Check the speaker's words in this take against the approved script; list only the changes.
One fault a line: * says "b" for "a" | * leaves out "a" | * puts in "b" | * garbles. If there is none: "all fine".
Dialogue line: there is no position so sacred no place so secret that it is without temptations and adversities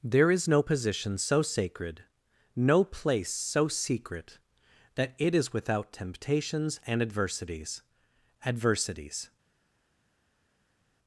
* puts in "adversities"